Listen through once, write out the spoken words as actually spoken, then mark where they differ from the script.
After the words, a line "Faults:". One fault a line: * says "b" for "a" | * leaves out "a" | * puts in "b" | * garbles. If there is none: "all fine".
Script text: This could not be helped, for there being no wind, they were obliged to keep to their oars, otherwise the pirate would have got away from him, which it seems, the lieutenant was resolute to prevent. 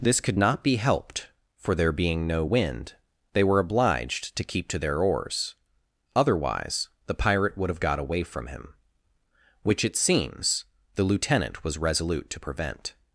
This could not be helped, for there being no wind, they were obliged to keep to their oars, otherwise the pirate would have got away from him, which it seems, the lieutenant was resolute to prevent.
Faults:
all fine